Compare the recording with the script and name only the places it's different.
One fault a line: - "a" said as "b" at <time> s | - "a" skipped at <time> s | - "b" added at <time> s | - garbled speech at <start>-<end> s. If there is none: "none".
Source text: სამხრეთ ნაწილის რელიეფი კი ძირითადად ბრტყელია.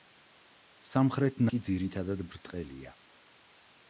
- "ნაწილის რელიეფი" skipped at 1.4 s